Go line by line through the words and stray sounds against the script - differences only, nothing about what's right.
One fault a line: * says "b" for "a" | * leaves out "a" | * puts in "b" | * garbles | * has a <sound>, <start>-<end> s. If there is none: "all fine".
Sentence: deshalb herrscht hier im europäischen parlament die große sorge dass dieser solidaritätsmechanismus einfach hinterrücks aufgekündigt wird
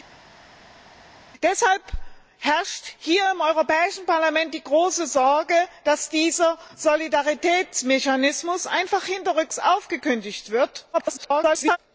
* garbles